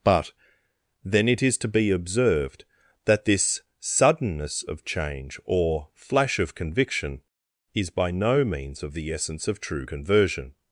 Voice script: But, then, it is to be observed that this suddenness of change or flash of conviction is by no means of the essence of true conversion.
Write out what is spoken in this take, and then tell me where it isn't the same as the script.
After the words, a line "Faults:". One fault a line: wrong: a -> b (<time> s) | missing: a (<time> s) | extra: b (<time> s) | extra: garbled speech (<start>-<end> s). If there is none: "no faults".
But, then, it is to be observed that this suddenness of change or flash of conviction is by no means of the essence of true conversion.
Faults:
no faults